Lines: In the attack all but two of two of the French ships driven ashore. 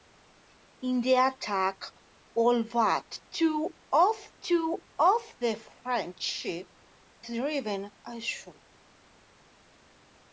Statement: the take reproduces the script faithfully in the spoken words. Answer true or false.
true